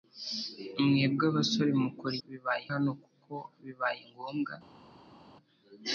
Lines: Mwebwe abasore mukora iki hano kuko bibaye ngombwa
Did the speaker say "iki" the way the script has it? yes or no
no